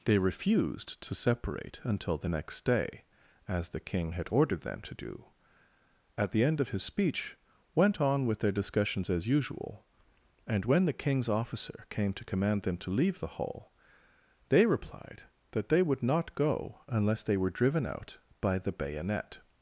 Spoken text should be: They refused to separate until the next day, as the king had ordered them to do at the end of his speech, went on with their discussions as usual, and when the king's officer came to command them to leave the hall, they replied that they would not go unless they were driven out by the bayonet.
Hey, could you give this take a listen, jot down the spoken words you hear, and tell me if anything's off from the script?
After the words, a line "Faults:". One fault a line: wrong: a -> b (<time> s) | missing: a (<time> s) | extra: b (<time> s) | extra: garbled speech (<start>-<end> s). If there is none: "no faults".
They refused to separate until the next day, as the king had ordered them to do at the end of his speech, went on with their discussions as usual, and when the king's officer came to command them to leave the hall, they replied that they would not go unless they were driven out by the bayonet.
Faults:
no faults